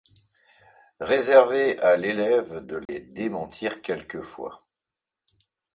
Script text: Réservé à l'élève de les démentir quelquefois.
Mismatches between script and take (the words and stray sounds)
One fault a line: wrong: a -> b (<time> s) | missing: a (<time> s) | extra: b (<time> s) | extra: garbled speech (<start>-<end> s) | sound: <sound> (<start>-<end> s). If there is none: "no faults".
sound: dropout (2.9-2.9 s)